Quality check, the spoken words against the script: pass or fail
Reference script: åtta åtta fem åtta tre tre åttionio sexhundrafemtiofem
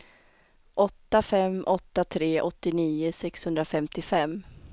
fail